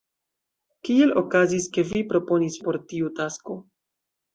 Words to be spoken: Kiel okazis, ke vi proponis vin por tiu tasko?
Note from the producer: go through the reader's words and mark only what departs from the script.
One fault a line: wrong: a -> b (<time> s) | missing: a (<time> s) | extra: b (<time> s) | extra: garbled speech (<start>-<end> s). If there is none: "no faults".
missing: vin (2.6 s)